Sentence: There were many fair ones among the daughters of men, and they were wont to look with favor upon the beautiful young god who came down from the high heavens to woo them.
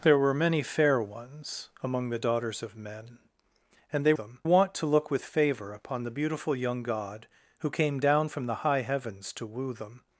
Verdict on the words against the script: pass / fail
fail